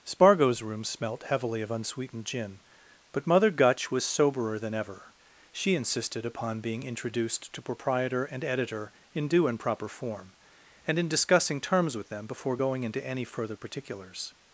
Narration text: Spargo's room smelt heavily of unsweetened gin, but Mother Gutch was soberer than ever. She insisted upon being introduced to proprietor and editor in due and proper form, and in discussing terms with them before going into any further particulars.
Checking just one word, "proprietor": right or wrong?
right